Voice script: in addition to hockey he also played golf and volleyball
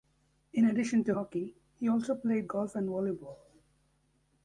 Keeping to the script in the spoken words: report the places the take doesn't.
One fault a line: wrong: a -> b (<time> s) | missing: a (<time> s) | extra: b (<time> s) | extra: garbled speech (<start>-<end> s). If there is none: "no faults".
no faults